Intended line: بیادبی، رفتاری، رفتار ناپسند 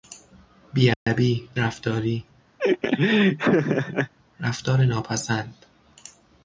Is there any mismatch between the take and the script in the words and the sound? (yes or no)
yes